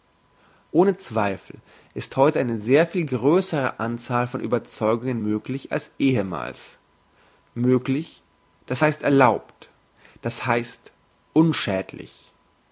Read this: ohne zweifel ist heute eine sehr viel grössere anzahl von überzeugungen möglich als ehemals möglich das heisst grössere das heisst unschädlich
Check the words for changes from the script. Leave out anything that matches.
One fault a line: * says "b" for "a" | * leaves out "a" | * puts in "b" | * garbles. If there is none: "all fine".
* says "erlaubt" for "grössere"